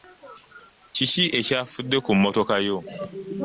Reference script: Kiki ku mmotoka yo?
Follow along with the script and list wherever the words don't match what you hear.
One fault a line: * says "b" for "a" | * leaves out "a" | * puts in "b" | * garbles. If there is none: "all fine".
* puts in "ekyafudde"